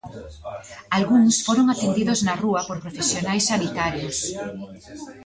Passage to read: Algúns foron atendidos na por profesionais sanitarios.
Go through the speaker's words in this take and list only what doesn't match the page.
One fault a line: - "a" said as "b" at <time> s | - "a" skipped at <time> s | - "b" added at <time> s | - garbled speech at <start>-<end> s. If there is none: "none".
- "rúa" added at 2.4 s